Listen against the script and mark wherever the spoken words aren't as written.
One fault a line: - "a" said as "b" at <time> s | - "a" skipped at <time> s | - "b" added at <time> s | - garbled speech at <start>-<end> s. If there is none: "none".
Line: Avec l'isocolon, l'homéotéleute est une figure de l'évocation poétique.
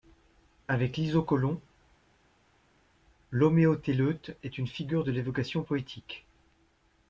none